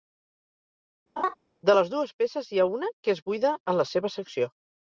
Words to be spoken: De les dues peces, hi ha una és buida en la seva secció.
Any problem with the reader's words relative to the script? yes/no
yes